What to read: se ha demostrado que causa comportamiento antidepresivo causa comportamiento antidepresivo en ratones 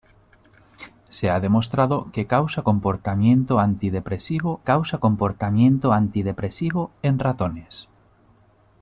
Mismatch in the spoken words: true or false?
false